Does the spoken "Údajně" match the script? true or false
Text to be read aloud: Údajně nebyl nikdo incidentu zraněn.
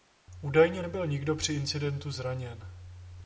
true